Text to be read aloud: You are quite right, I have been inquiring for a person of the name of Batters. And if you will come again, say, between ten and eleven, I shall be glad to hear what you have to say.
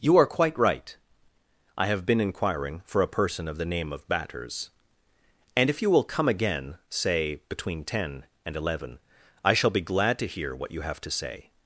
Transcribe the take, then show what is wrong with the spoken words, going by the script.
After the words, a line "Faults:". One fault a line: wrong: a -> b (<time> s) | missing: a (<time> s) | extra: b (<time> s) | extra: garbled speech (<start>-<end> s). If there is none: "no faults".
You are quite right, I have been inquiring for a person of the name of Batters. And if you will come again, say, between ten and eleven, I shall be glad to hear what you have to say.
Faults:
no faults